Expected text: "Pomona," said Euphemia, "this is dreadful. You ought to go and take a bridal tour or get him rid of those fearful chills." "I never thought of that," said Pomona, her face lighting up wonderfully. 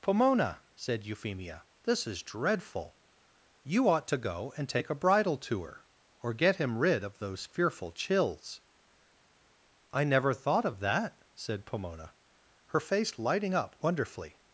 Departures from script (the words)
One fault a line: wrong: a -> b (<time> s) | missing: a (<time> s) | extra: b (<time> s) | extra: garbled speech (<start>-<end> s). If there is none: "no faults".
no faults